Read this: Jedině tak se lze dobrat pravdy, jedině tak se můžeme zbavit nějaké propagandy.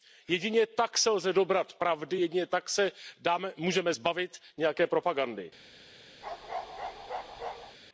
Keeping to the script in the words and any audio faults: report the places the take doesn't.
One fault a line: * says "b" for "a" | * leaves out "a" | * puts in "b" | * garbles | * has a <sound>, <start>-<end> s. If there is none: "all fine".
* has a bark, 6.2-7.8 s